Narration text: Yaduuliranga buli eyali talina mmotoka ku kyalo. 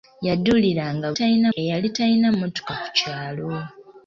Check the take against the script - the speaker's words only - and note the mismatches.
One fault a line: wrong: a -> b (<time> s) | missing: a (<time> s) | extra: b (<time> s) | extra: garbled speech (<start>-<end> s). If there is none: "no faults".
wrong: buli -> talina (1.2 s)